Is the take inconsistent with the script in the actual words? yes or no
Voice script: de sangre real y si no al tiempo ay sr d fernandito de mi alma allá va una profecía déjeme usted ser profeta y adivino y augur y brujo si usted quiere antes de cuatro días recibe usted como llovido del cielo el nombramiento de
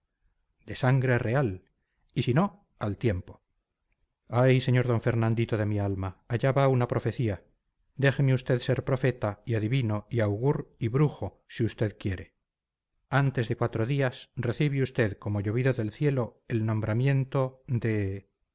no